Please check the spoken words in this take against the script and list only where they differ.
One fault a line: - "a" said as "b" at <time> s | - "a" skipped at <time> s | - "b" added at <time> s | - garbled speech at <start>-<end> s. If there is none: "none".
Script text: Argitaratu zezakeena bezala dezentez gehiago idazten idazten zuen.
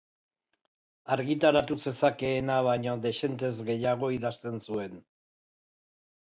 - "bezala" said as "baino" at 2.7 s
- "idazten" skipped at 4.6 s